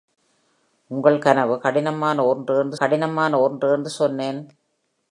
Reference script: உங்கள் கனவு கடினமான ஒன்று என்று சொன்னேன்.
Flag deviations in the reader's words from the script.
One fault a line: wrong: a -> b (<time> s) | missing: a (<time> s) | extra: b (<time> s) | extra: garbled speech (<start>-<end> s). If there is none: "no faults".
extra: கடினமான ஒன்று என்று (2.8 s)